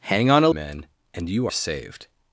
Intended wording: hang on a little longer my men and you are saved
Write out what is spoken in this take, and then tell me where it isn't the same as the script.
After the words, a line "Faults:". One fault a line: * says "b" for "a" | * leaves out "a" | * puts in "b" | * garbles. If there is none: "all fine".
hang on a men and you saved
Faults:
* leaves out "little longer my"
* leaves out "are"